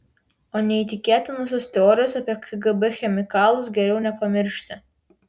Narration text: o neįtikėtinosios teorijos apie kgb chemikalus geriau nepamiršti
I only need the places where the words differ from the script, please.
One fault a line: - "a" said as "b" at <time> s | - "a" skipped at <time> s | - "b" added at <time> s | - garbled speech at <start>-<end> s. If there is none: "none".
none